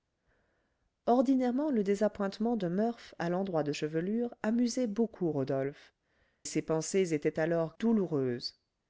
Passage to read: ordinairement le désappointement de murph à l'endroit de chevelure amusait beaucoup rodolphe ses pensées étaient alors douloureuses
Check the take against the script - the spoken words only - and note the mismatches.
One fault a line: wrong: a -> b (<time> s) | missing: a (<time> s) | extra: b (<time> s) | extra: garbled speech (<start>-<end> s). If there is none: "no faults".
no faults